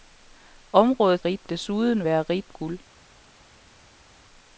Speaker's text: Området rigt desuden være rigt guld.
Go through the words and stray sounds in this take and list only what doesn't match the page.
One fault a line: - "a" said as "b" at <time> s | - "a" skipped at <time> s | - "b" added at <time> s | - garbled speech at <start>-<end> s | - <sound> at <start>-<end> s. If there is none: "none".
none